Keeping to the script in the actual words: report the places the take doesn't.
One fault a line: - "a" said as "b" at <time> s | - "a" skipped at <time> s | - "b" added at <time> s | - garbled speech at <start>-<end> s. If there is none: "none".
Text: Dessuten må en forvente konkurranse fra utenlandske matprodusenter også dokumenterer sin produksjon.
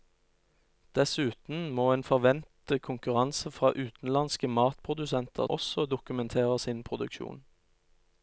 none